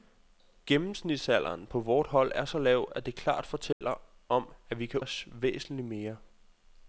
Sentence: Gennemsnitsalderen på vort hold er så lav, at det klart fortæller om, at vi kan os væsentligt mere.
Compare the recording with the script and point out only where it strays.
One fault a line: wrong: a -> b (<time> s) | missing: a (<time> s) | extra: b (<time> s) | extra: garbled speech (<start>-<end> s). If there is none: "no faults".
no faults